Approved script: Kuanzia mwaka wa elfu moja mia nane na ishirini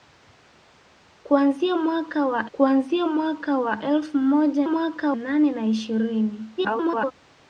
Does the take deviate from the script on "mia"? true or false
true